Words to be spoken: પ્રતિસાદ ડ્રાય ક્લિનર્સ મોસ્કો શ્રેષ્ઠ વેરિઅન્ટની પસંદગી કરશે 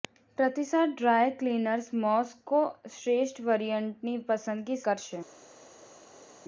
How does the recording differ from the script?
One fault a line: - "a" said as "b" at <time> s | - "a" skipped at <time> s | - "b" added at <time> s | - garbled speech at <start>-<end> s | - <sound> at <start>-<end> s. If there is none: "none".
none